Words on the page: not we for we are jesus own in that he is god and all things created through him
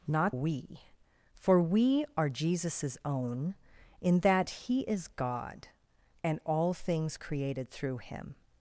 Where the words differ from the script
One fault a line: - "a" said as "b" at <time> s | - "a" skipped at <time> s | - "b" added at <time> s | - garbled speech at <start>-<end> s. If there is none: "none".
none